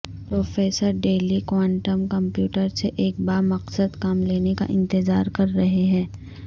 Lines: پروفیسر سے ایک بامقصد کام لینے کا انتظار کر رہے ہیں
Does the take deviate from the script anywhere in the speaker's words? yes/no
yes